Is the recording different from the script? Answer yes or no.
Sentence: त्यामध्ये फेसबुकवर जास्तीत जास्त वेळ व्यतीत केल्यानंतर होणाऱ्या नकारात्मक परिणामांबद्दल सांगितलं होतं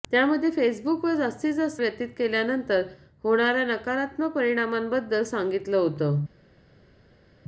yes